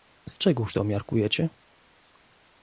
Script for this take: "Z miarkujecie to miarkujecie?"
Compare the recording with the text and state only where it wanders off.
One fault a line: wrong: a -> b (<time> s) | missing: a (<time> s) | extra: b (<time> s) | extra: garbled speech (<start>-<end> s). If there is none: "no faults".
wrong: miarkujecie -> czegóż (0.4 s)